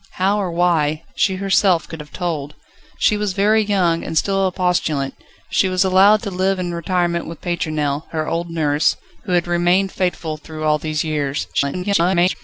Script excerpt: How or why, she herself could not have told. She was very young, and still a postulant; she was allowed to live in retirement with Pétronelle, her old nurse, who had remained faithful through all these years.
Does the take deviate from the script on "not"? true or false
true